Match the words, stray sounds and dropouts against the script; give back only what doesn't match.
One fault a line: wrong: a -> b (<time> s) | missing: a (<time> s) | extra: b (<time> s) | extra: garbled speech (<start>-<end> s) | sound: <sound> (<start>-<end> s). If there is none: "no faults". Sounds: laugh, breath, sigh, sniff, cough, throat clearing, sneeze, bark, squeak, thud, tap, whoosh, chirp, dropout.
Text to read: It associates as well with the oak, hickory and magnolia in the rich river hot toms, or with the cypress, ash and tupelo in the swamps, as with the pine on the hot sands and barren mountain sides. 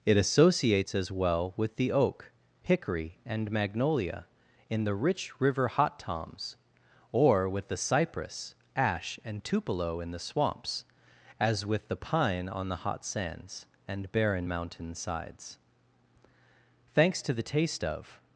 extra: Thanks to the taste of (16.9 s)